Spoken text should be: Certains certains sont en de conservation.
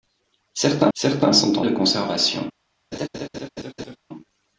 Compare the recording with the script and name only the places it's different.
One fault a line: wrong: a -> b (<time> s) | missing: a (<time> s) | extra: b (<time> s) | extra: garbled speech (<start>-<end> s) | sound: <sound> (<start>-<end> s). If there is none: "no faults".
sound: laugh (2.9-4.0 s)